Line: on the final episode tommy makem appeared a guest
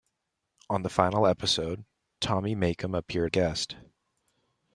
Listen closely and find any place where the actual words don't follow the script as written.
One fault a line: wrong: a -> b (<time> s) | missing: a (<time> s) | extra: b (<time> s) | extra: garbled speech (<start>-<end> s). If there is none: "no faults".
no faults